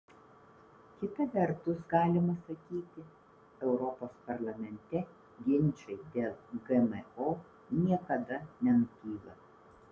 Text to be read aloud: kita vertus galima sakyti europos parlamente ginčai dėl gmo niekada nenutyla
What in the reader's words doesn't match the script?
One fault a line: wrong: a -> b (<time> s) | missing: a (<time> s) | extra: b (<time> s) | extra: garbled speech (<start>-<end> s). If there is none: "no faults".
no faults